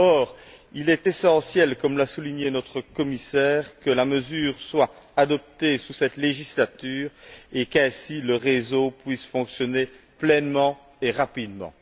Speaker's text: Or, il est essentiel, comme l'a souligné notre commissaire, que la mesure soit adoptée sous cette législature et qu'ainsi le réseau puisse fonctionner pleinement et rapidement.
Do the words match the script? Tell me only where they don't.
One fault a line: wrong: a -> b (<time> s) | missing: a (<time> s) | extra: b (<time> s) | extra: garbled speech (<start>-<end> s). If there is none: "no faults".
no faults